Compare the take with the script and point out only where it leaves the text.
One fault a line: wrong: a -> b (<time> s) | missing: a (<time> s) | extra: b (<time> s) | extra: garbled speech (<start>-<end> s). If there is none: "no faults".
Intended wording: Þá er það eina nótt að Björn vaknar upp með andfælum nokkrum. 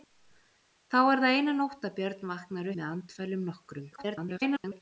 missing: upp (2.7 s)
extra: garbled speech (3.9-4.8 s)